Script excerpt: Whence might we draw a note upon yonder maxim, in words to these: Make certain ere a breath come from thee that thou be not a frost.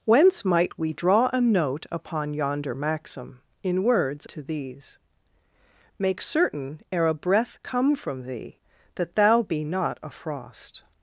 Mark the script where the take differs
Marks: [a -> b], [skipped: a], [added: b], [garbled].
Whence might we draw a note upon yonder maxim, in words to these: Make certain ere a breath come from thee that thou be not a frost.